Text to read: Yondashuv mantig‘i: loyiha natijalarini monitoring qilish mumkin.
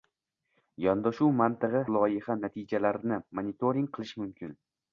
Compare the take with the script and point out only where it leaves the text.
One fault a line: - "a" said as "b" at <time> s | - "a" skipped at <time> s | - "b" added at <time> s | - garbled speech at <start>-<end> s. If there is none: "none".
none